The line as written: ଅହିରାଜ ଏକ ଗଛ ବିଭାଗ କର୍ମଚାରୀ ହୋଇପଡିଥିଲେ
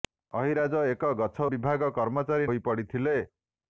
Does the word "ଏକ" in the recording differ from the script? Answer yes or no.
no